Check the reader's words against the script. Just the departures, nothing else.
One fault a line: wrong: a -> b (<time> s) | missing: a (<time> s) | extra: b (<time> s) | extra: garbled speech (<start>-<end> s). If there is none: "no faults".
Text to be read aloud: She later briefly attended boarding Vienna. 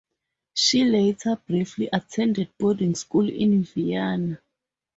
extra: school in (2.9 s)